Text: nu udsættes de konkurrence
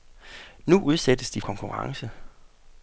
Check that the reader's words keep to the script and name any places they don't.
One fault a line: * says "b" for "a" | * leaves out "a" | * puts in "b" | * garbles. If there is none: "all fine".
all fine